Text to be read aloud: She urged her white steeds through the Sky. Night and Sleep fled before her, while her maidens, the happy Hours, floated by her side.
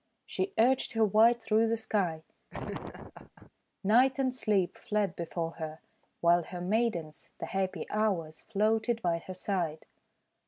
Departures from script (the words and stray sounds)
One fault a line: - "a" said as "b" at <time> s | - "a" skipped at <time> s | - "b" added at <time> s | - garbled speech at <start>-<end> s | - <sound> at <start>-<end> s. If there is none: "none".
- "steeds" skipped at 1.4 s
- laugh at 2.5-3.5 s